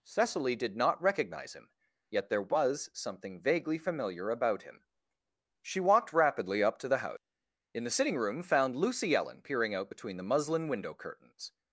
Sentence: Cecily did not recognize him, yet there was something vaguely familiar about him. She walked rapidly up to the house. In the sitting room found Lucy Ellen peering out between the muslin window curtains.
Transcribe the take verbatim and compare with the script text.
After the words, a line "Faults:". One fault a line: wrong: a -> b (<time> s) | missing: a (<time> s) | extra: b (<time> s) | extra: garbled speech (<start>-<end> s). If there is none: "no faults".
Cecily did not recognize him, yet there was something vaguely familiar about him. She walked rapidly up to the house. In the sitting room found Lucy Ellen peering out between the muslin window curtains.
Faults:
no faults